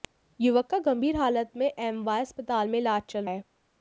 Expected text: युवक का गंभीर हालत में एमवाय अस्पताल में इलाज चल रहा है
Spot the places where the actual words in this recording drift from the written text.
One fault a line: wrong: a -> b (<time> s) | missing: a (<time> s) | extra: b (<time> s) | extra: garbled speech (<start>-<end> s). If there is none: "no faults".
missing: रहा (3.2 s)